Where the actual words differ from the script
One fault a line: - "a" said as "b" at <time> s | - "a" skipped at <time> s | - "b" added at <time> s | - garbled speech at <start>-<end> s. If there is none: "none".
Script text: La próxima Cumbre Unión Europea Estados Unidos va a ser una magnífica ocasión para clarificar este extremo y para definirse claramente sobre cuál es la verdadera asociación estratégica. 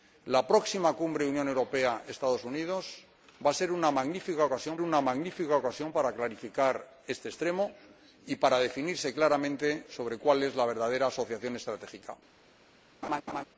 - "una magnífica ocasión" added at 4.8 s